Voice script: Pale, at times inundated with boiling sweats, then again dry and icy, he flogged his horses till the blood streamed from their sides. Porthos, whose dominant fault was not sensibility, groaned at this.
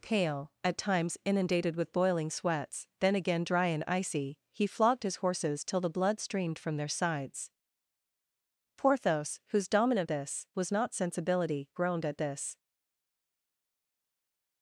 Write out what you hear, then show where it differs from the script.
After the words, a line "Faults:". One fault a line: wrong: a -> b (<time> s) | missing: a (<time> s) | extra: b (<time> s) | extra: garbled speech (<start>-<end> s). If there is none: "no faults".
Pale, at times inundated with boiling sweats, then again dry and icy, he flogged his horses till the blood streamed from their sides. Porthos, whose dominant this was not sensibility, groaned at this.
Faults:
wrong: fault -> this (10.1 s)